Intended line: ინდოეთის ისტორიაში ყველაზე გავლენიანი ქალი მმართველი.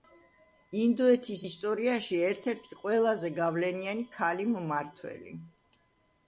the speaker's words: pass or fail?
fail